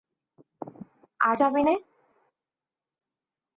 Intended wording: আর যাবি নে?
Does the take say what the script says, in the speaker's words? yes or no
yes